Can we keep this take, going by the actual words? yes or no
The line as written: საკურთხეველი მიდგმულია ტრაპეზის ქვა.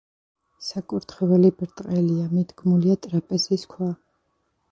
no